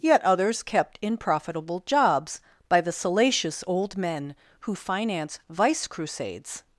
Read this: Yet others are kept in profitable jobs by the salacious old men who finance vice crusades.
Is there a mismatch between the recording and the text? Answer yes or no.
yes